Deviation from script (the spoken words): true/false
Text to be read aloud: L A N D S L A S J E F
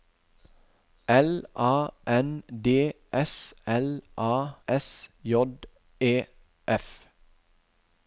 false